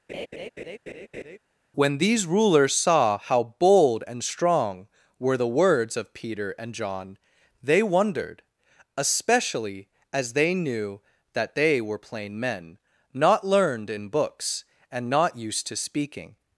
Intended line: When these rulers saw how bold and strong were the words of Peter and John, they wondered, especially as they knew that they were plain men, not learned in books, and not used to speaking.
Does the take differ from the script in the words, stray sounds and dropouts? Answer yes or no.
yes